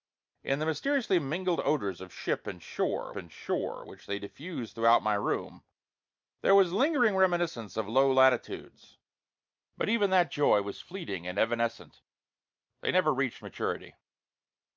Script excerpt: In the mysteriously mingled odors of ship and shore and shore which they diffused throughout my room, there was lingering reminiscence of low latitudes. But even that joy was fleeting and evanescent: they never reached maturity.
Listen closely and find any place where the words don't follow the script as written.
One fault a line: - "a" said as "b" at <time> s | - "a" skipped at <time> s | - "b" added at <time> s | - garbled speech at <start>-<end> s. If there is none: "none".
none